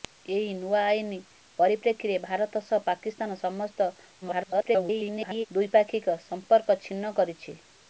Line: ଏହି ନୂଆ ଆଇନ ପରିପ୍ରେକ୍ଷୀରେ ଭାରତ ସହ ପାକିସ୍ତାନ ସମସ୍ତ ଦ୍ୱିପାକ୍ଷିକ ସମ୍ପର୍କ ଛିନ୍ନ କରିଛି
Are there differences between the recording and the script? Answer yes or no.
yes